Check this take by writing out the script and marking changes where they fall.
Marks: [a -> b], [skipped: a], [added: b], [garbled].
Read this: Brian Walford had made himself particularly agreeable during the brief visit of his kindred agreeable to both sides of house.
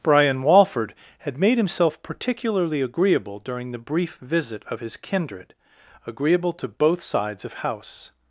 Brian Walford had made himself particularly agreeable during the brief visit of his kindred agreeable to both sides of house.